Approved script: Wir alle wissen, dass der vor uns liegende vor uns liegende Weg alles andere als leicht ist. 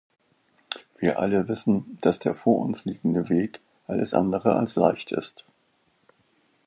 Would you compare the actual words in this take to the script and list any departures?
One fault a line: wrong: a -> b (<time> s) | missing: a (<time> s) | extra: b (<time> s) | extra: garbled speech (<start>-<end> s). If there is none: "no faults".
missing: vor uns liegende (3.3 s)